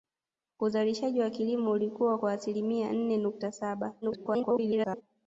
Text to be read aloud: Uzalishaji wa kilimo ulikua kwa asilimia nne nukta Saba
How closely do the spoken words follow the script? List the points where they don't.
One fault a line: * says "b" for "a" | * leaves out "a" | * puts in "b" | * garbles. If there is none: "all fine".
* garbles